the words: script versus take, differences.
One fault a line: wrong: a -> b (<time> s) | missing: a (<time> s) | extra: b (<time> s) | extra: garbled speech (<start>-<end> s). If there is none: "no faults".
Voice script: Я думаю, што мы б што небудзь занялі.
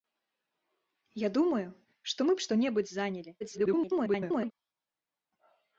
extra: garbled speech (3.4-4.5 s)